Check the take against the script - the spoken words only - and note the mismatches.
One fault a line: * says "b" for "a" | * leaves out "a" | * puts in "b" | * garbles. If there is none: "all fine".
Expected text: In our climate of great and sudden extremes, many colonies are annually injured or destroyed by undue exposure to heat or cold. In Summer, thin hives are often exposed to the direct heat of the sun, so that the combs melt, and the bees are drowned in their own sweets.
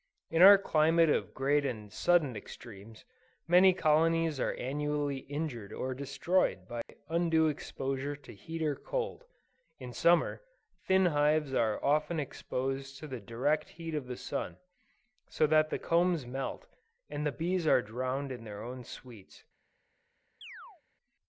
all fine